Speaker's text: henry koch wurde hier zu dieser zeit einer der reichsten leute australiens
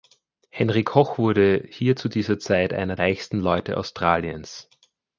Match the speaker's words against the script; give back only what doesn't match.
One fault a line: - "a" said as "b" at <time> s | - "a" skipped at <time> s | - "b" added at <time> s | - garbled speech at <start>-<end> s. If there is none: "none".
- "der" skipped at 3.0 s